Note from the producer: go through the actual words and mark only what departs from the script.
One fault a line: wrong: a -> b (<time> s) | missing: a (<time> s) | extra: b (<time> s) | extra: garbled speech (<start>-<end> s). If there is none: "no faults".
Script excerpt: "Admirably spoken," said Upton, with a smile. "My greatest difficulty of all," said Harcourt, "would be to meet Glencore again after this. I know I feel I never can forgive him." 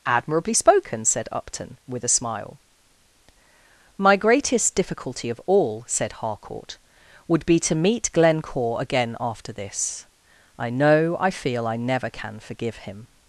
no faults